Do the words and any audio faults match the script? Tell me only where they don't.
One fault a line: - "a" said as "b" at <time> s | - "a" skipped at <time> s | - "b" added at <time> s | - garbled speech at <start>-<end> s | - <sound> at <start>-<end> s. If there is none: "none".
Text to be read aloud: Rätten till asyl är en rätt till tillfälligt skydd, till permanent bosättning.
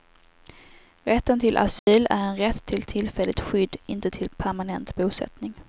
- dropout at 1.8-1.9 s
- "inte" added at 3.9 s